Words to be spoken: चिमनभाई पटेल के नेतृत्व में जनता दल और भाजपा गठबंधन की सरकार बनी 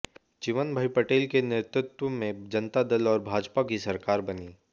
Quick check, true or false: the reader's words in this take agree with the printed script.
false